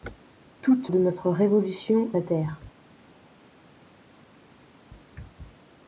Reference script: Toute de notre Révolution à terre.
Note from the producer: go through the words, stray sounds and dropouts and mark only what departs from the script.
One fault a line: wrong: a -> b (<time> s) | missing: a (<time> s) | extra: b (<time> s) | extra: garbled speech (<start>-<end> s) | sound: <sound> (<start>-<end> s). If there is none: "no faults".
no faults